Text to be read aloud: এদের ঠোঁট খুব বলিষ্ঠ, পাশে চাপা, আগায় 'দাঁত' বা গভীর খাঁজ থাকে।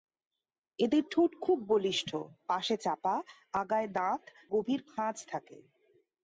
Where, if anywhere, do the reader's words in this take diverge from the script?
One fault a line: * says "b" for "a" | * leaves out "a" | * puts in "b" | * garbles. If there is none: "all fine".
* leaves out "বা"